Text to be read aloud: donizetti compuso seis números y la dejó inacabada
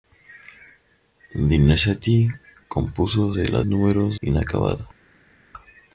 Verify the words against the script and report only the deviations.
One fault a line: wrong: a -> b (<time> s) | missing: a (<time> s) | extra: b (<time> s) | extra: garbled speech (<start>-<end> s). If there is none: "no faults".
missing: seis números (3.4 s)
wrong: dejó -> números (3.6 s)